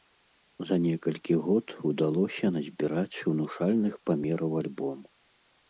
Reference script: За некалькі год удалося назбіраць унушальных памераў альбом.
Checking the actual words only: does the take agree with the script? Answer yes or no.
yes